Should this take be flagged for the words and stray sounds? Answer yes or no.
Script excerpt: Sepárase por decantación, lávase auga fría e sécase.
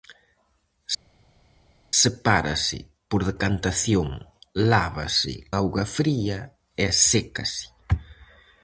no